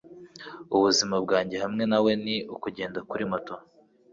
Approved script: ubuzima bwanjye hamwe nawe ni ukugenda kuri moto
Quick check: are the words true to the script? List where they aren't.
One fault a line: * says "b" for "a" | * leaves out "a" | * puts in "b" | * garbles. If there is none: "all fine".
all fine